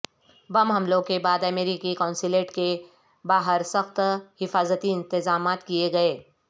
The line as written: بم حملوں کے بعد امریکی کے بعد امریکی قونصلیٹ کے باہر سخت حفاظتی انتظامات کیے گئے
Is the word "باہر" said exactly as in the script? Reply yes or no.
yes